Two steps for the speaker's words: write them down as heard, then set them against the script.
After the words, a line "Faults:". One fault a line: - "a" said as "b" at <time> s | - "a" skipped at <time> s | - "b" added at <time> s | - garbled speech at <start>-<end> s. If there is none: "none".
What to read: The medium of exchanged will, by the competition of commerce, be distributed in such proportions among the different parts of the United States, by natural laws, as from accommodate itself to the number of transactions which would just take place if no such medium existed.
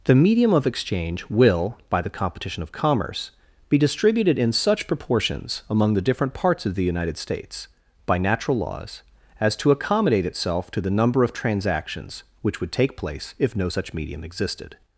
The medium of exchange will, by the competition of commerce, be distributed in such proportions among the different parts of the United States, by natural laws, as to accommodate itself to the number of transactions which would take place if no such medium existed.
Faults:
- "exchanged" said as "exchange" at 0.7 s
- "from" said as "to" at 9.6 s
- "just" skipped at 12.7 s